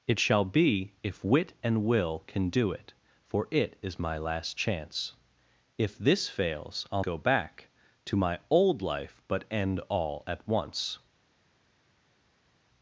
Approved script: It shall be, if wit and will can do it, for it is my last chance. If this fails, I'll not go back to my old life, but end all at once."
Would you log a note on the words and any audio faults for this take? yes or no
yes